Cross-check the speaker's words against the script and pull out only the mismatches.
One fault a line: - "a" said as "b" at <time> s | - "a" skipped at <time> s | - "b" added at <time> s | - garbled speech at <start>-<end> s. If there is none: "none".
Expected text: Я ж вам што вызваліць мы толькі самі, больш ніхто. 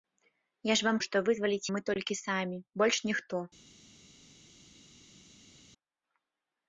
none